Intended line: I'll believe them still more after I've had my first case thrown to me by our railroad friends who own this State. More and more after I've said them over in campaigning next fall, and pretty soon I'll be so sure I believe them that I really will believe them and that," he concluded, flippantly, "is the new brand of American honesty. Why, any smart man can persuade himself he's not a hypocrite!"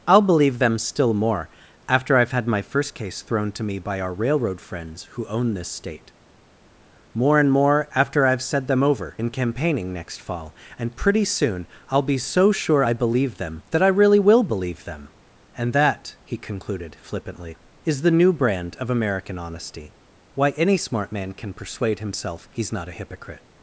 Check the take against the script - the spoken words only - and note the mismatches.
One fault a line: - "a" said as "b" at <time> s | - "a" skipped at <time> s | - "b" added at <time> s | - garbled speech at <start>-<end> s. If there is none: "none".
none